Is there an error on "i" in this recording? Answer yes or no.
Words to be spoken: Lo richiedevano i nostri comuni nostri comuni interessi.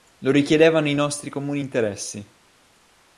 no